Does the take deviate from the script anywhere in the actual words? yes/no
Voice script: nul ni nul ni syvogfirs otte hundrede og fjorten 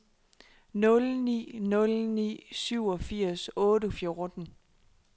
yes